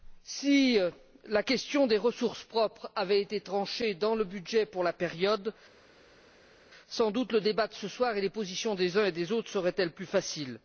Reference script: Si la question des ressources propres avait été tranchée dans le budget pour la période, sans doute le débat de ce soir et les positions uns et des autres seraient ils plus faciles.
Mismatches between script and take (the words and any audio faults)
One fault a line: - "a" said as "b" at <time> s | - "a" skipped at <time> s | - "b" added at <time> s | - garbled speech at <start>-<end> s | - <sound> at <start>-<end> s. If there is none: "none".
- "des" added at 8.7 s